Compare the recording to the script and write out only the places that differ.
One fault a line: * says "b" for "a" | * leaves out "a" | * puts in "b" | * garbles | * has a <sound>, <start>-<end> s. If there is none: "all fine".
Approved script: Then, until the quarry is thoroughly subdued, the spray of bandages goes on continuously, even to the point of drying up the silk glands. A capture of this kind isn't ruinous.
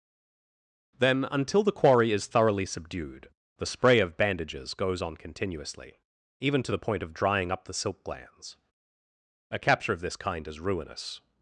* says "is" for "isn't"